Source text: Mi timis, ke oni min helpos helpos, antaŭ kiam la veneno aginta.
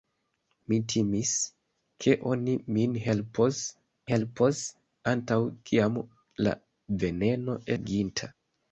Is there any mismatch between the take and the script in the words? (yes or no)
no